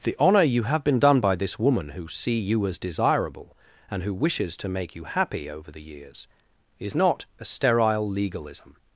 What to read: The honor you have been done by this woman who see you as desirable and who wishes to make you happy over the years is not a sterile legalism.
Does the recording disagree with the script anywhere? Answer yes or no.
no